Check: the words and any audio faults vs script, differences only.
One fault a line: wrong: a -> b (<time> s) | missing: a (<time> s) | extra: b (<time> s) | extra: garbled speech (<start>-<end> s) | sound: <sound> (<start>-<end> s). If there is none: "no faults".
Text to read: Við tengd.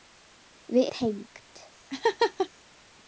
sound: laugh (1.9-2.5 s)